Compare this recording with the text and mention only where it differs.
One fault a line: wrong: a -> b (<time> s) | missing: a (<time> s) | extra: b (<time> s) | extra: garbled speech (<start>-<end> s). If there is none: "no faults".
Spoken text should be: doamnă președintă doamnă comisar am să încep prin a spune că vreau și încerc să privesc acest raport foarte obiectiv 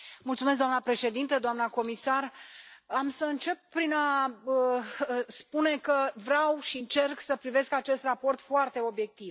no faults